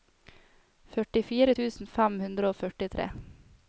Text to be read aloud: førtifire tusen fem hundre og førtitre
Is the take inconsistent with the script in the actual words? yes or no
no